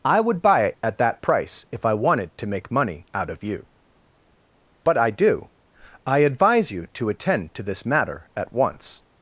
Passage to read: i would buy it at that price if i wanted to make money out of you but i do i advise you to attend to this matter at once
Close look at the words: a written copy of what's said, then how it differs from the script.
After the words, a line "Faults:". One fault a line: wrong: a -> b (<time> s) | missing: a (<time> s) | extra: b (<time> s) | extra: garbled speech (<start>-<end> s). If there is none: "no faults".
i would buy it at that price if i wanted to make money out of you but i do i advise you to attend to this matter at once
Faults:
no faults